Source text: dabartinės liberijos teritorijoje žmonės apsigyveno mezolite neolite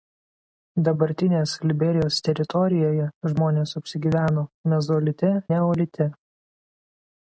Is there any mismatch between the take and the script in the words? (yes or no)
no